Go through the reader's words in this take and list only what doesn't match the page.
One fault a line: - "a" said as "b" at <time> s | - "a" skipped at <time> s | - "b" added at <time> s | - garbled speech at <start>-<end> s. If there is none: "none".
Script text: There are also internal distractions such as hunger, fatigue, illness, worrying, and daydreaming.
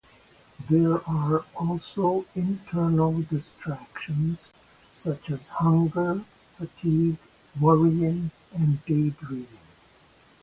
- "illness" skipped at 7.2 s